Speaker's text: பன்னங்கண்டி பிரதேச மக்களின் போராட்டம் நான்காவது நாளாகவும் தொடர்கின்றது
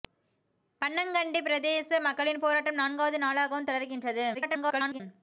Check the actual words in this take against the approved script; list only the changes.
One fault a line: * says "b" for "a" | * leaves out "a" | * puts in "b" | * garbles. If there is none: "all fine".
* garbles